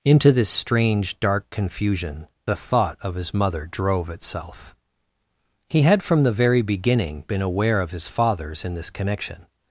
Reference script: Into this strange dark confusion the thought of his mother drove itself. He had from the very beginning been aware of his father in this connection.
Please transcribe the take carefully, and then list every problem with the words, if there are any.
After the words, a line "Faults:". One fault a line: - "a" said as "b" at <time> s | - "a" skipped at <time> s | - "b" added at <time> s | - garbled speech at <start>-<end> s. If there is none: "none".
Into this strange dark confusion the thought of his mother drove itself. He had from the very beginning been aware of his fathers in this connection.
Faults:
- "father" said as "fathers" at 8.1 s